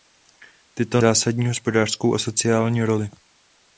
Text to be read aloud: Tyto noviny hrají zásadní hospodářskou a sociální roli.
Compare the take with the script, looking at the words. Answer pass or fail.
fail